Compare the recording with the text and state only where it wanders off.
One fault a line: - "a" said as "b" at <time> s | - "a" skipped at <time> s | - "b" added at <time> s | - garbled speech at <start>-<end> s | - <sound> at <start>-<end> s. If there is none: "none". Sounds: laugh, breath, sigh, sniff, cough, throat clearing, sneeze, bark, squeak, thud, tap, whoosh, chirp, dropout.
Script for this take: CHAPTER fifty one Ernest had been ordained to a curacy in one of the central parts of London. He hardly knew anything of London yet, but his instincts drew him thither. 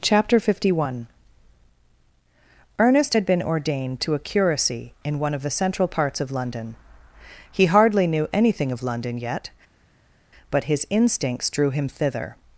none